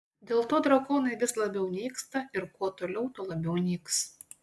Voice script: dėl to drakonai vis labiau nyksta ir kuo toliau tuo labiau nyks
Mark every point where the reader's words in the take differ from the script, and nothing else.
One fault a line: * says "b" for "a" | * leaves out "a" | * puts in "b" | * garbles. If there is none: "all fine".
all fine